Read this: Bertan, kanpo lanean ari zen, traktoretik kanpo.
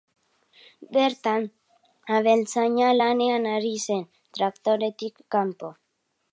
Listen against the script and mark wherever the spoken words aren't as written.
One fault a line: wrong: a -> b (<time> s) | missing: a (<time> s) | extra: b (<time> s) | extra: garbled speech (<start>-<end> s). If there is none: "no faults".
wrong: kanpo -> abeltzaina (2.2 s)